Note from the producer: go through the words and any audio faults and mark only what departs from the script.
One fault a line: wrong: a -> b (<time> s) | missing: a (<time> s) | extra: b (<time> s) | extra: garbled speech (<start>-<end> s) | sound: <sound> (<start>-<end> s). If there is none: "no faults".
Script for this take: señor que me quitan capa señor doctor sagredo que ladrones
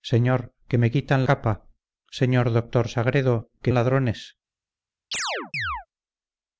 sound: chirp (5.1-5.9 s)